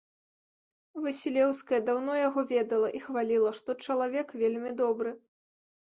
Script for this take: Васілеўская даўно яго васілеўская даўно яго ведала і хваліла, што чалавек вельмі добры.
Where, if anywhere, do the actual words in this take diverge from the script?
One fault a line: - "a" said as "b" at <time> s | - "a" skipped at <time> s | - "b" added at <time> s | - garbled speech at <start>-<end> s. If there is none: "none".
- "васілеўская даўно яго" skipped at 2.5 s